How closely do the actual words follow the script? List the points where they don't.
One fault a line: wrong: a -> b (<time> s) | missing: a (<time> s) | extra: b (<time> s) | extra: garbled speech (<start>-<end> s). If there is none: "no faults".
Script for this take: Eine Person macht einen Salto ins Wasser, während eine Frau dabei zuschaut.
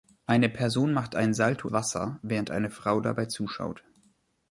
missing: ins (1.7 s)